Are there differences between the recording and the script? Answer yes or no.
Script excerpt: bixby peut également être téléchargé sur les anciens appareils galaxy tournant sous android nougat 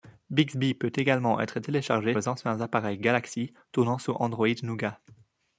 yes